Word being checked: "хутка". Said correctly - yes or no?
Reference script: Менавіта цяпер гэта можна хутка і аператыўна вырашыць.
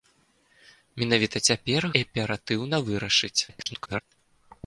no